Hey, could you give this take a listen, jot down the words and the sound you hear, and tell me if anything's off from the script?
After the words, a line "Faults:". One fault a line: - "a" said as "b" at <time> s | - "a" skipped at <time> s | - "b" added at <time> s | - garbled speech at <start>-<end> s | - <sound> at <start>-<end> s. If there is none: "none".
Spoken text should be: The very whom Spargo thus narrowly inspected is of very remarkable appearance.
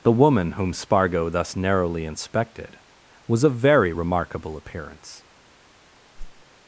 The woman whom Spargo thus narrowly inspected was of very remarkable appearance.
Faults:
- "very" said as "woman" at 0.1 s
- "is" said as "was" at 3.3 s
- whoosh at 6.2-6.4 s